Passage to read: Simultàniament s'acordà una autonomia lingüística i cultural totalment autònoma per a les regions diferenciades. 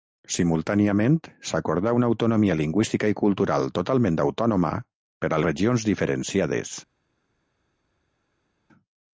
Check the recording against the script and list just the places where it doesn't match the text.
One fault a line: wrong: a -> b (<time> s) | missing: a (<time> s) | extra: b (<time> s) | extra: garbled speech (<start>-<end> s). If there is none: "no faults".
missing: les (5.4 s)